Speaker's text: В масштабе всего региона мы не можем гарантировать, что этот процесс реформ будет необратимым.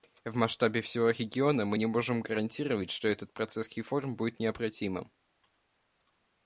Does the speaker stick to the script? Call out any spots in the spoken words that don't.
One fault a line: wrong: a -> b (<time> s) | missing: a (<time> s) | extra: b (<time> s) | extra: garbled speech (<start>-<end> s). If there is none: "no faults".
no faults